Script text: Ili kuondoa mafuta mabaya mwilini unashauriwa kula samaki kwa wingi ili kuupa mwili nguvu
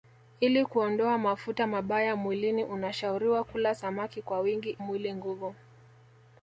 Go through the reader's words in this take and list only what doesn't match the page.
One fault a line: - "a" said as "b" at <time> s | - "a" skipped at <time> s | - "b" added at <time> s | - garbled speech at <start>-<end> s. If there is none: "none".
- "ili kuupa" skipped at 4.8 s